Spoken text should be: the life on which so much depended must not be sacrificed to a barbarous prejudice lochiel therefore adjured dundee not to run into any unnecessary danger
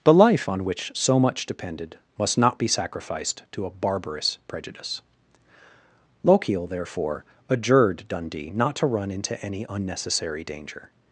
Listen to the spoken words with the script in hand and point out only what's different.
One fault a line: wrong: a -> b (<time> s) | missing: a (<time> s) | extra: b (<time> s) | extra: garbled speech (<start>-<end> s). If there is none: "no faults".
no faults